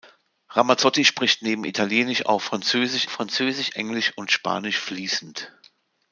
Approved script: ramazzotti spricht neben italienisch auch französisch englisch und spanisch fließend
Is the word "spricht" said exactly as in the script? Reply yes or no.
yes